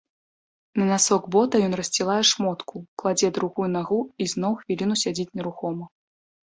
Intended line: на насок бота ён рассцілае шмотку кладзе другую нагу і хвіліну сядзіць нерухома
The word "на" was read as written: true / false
true